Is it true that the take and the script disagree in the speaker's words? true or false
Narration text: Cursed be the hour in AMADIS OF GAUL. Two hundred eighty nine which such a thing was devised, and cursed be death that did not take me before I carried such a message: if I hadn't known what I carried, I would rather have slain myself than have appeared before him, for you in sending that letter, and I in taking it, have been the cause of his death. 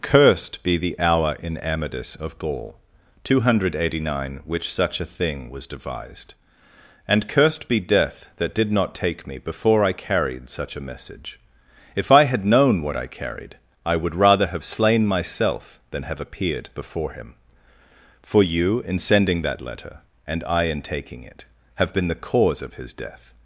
true